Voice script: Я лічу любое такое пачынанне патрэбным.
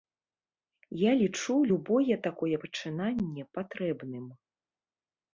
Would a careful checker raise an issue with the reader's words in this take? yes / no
no